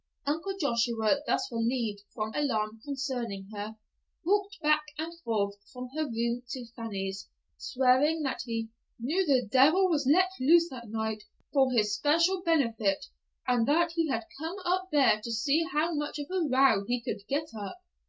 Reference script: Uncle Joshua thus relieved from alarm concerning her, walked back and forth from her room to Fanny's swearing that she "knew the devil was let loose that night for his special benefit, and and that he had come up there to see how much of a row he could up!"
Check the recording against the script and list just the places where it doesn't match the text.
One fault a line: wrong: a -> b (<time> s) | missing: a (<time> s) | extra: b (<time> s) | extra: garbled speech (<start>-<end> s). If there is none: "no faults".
wrong: she -> he (8.4 s)
missing: and (13.7 s)
extra: get (17.3 s)